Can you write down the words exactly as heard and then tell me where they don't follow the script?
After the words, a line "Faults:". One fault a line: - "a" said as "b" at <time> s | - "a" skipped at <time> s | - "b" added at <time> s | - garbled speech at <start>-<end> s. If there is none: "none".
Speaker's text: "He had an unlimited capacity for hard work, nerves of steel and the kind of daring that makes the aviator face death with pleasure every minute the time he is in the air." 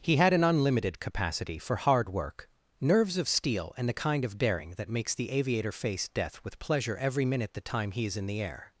"He had an unlimited capacity for hard work, nerves of steel and the kind of daring that makes the aviator face death with pleasure every minute the time he is in the air."
Faults:
none